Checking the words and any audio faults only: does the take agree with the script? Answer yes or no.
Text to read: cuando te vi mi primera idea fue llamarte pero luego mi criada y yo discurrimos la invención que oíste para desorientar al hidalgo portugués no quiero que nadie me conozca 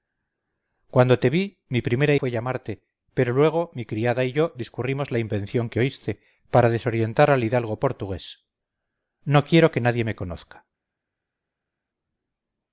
no